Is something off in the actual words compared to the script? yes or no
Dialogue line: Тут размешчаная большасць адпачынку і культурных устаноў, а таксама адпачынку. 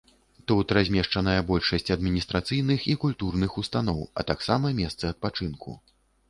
yes